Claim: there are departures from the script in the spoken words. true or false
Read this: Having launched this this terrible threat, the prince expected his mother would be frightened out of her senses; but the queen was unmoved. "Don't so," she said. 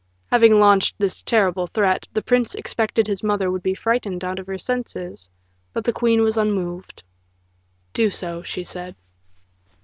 true